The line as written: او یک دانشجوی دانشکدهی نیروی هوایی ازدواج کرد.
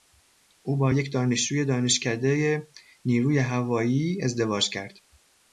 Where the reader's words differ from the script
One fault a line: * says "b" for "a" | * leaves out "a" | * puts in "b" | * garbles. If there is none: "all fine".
* puts in "با"